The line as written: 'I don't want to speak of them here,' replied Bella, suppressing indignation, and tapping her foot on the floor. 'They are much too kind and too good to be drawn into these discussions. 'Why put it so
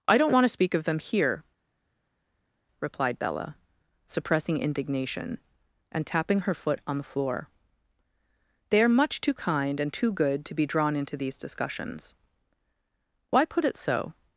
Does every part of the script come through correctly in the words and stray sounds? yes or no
yes